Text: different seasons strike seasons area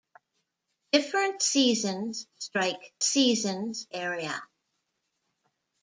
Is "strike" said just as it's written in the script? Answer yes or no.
yes